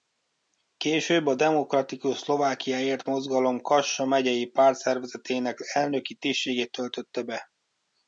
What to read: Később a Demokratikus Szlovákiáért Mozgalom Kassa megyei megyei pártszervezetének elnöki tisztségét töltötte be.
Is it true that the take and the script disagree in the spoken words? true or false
true